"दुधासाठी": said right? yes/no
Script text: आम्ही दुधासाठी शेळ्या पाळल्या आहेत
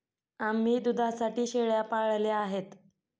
yes